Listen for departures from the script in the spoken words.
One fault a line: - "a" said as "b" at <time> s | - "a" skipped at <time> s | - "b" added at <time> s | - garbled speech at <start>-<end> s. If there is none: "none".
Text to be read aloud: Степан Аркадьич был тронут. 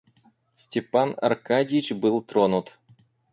none